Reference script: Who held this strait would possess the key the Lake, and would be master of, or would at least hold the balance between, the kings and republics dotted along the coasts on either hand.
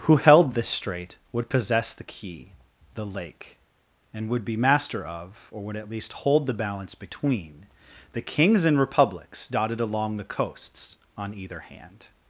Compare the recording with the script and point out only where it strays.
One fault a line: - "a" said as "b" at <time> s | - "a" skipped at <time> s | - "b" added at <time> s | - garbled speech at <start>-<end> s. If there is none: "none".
none